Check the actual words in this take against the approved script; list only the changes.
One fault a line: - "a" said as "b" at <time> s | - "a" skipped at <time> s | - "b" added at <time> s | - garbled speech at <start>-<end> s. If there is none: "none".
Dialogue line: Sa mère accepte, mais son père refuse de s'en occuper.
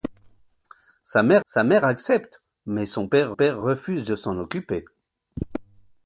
- "sa mère" added at 1.4 s
- "père" added at 3.3 s